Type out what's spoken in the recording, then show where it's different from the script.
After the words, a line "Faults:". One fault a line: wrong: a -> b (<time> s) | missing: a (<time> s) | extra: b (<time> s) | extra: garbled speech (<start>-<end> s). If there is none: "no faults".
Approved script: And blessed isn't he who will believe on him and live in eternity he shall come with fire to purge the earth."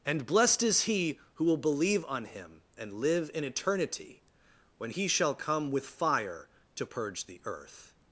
And blessed is he who will believe on him and live in eternity when he shall come with fire to purge the earth."
Faults:
wrong: isn't -> is (0.6 s)
extra: when (4.8 s)